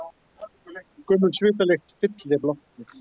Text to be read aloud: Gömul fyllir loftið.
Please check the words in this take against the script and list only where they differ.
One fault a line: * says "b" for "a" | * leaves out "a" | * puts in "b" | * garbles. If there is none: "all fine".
* puts in "svitalykt"